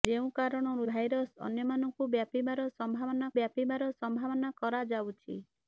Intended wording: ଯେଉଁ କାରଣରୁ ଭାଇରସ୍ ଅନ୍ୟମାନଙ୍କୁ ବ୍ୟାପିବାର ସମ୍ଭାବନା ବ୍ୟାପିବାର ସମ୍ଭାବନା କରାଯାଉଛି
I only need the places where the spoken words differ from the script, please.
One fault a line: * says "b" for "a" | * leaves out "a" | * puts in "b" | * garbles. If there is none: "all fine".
all fine